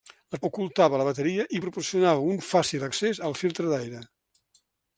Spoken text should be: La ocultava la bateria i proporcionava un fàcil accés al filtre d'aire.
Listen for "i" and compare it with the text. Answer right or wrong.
right